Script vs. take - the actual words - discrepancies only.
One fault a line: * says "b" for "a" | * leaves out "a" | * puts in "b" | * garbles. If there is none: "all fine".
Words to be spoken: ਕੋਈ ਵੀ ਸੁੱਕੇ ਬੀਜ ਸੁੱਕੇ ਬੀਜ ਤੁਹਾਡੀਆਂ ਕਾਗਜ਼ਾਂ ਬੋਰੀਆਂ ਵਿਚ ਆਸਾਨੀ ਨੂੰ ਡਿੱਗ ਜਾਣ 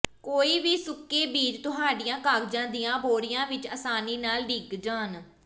* leaves out "ਸੁੱਕੇ ਬੀਜ"
* puts in "ਦੀਆਂ"
* says "ਨਾਲ" for "ਨੂੰ"